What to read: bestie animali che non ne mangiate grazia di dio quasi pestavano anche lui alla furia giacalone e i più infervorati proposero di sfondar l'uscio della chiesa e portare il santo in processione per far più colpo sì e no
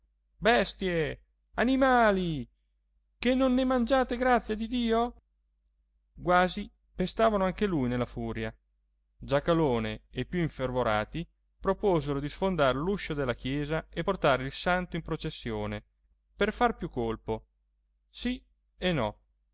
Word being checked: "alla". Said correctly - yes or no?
no